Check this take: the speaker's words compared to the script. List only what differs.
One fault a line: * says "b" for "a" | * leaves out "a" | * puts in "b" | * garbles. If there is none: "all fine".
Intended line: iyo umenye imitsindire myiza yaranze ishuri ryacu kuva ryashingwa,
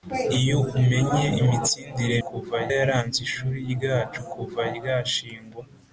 * says "kuva" for "myiza"